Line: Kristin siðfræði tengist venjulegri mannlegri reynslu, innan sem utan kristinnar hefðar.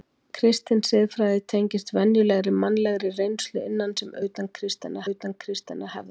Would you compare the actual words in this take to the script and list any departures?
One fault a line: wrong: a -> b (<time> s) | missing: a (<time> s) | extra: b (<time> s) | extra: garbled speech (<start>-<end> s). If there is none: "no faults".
extra: utan kristinnar (5.1 s)